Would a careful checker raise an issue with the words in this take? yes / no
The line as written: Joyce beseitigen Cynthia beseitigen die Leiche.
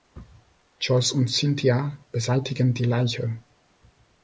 yes